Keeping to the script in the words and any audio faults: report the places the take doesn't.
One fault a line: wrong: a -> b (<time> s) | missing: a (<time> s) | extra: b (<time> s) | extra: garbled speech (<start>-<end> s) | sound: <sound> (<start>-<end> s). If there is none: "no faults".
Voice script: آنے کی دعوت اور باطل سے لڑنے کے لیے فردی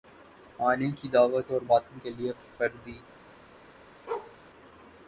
missing: سے لڑنے (2.0 s)
sound: bark (4.1-4.4 s)